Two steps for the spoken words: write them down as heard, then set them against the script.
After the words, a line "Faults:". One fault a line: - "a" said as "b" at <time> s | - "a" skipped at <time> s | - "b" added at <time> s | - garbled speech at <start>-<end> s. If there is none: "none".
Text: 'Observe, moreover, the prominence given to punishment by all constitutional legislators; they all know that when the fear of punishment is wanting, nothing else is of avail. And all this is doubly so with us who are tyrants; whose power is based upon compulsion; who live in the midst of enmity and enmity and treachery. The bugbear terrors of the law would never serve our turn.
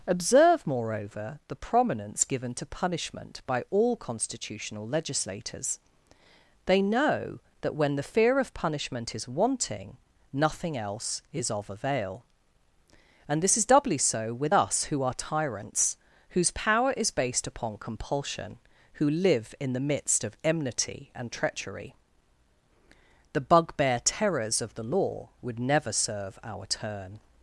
'Observe, moreover, the prominence given to punishment by all constitutional legislators; they know that when the fear of punishment is wanting, nothing else is of avail. And this is doubly so with us who are tyrants; whose power is based upon compulsion; who live in the midst of enmity and treachery. The bugbear terrors of the law would never serve our turn.
Faults:
- "all" skipped at 6.8 s
- "all" skipped at 13.4 s
- "enmity and" skipped at 21.3 s